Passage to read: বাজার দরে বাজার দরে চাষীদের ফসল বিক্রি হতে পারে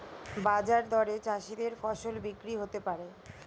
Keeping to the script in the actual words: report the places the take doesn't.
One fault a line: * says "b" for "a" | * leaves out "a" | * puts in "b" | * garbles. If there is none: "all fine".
* leaves out "বাজার দরে"